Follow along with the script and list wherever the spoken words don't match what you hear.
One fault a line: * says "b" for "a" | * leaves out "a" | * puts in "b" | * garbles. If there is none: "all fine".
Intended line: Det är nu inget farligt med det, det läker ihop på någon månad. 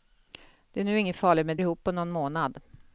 * leaves out "det det läker"